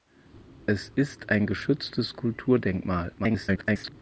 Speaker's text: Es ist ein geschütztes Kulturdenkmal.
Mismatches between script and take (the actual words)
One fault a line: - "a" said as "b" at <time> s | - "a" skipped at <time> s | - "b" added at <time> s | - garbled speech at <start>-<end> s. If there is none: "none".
- garbled speech at 3.2-3.9 s